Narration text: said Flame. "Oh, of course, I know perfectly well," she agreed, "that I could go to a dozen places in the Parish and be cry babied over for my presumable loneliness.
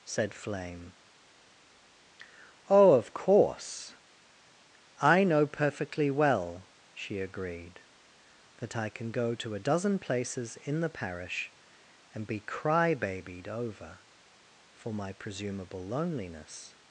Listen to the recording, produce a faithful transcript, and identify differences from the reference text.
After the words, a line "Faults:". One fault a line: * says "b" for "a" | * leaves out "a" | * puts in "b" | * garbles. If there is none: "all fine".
said Flame. "Oh, of course, I know perfectly well," she agreed, "that I can go to a dozen places in the Parish and be cry babied over for my presumable loneliness.
Faults:
* says "can" for "could"